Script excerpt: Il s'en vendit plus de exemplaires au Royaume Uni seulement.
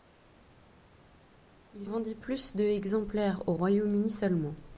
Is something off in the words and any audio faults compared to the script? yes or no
yes